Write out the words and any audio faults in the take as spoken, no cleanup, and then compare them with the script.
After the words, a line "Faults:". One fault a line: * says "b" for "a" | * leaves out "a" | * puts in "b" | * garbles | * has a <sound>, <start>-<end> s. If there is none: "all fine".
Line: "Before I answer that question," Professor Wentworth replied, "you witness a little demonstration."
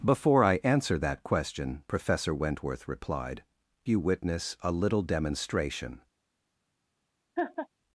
"Before I answer that question," Professor Wentworth replied, "you witness a little demonstration."
Faults:
* has a laugh, 7.4-7.7 s